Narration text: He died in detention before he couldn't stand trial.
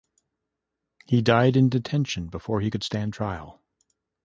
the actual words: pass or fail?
fail